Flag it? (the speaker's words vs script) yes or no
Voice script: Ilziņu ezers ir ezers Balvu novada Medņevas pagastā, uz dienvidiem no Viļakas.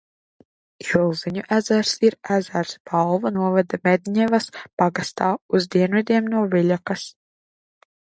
no